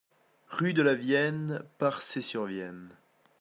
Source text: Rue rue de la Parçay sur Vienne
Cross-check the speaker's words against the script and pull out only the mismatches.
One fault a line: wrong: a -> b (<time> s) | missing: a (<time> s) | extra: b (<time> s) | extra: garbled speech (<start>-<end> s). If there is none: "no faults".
missing: rue (0.7 s)
extra: Vienne (0.9 s)